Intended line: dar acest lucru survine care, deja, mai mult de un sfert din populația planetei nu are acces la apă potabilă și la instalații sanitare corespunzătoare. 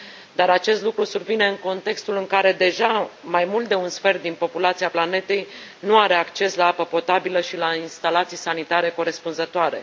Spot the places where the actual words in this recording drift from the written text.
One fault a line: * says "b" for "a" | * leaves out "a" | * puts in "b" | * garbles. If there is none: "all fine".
* puts in "în contextul în"